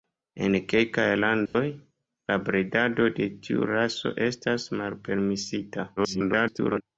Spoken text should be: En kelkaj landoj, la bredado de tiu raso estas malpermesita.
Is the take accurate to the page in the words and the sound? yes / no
no